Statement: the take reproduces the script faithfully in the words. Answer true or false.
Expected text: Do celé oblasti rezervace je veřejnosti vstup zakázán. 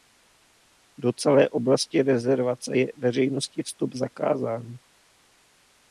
true